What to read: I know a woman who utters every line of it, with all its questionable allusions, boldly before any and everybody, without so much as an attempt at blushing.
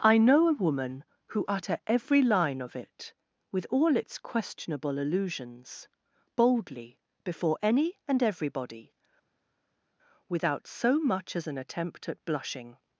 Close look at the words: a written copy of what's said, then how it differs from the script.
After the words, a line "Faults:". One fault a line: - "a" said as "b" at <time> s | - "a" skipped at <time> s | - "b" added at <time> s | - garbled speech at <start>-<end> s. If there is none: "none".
I know a woman who utter every line of it, with all its questionable allusions, boldly before any and everybody, without so much as an attempt at blushing.
Faults:
- "utters" said as "utter" at 1.5 s